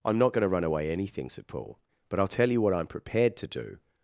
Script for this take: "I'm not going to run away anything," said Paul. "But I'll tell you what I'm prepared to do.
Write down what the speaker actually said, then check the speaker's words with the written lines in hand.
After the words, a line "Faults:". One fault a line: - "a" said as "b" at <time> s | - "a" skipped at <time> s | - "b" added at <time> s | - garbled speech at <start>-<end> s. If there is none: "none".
"I'm not going to run away anything," said Paul. "But I'll tell you what I'm prepared to do.
Faults:
none